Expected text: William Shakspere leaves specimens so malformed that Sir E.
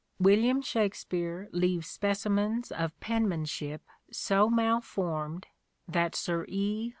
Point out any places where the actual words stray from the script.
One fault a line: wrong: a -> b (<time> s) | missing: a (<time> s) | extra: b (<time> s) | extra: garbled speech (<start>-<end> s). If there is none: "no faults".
extra: of penmanship (2.7 s)